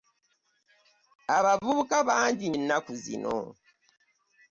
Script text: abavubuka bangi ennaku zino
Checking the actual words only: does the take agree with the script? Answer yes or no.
yes